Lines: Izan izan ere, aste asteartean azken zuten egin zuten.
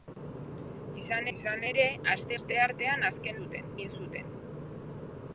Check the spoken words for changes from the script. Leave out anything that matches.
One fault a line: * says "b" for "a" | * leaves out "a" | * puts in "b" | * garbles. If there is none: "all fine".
all fine